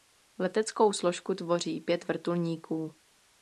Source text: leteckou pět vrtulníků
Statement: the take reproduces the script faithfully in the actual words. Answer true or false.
false